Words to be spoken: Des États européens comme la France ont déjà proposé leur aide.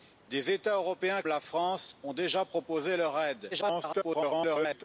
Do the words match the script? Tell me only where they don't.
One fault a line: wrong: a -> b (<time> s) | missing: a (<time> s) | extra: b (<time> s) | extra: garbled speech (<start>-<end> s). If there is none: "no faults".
missing: comme (1.2 s)
extra: garbled speech (3.5-4.8 s)